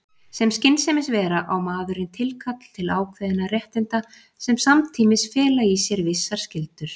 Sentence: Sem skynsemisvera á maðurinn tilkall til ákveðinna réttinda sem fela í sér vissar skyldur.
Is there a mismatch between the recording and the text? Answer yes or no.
yes